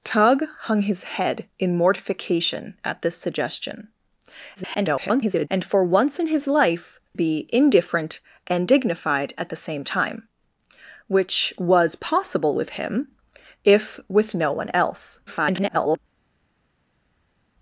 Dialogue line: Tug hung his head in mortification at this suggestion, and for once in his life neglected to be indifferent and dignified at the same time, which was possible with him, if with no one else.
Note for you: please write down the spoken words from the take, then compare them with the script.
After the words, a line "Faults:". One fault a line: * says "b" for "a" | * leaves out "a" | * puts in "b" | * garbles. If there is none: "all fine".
Tug hung his head in mortification at this suggestion, [garbled] and for once in his life be indifferent and dignified at the same time, which was possible with him, if with no one else. [garbled]
Faults:
* garbles
* leaves out "neglected to"
* garbles